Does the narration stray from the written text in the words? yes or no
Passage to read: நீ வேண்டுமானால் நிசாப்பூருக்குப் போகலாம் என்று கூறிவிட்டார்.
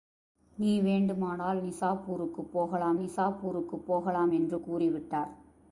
yes